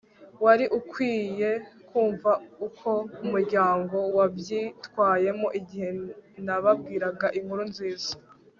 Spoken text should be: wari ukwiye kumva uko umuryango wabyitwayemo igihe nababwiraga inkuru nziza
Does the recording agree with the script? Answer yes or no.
yes